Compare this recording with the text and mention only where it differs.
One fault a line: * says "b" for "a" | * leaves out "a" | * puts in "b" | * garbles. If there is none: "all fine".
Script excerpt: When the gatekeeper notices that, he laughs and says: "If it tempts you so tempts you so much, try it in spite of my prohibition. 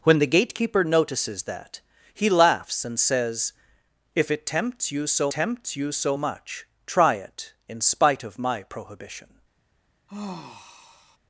all fine